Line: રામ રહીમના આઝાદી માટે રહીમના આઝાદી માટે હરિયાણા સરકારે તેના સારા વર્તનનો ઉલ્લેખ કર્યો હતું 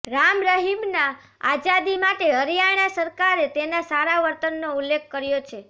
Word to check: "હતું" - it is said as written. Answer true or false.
false